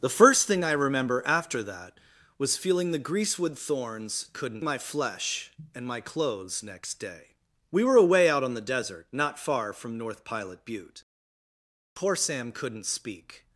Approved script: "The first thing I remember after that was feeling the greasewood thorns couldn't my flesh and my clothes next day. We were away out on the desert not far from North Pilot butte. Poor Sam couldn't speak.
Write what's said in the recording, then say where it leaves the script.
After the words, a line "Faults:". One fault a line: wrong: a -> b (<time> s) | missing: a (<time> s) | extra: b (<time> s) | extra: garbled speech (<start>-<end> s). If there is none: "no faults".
"The first thing I remember after that was feeling the greasewood thorns couldn't my flesh and my clothes next day. We were away out on the desert not far from North Pilot butte. Poor Sam couldn't speak.
Faults:
no faults